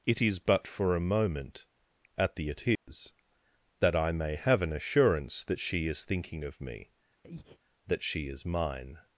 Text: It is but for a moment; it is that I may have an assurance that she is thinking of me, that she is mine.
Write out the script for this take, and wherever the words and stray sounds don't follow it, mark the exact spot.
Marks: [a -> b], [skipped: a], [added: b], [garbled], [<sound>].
It is but for a moment; [added: at the] it is [dropout] that I may have an assurance that she is thinking of me, [breath] that she is mine.